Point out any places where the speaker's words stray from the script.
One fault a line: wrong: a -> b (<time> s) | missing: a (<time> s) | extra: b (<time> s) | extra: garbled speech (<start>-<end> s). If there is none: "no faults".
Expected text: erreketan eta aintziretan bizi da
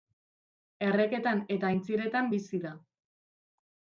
no faults